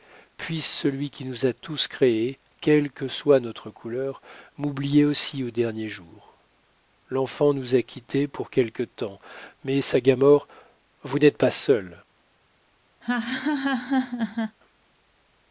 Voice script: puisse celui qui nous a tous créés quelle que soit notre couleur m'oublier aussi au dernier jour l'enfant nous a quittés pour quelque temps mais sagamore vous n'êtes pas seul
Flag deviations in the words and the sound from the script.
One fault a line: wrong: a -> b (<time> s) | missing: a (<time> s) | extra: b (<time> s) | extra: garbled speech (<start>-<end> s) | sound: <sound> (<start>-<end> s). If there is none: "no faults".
sound: laugh (13.0-14.6 s)